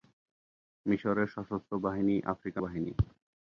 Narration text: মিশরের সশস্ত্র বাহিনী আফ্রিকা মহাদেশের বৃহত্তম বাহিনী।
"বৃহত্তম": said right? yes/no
no